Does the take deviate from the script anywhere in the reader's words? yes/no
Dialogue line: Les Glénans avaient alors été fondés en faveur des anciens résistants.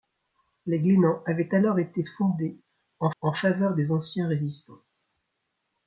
yes